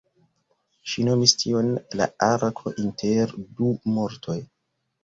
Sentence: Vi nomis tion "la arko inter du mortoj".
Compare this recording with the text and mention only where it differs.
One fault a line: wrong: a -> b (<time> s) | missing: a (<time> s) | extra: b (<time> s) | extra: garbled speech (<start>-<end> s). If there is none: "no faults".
wrong: Vi -> Ŝi (0.9 s)